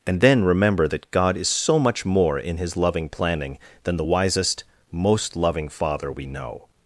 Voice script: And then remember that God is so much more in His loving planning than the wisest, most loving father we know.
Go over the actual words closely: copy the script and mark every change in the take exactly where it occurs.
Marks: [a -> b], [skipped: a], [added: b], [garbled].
And then remember that God is so much more in His loving planning than the wisest, most loving father we know.